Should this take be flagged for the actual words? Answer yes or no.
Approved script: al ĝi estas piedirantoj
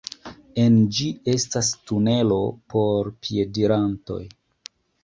yes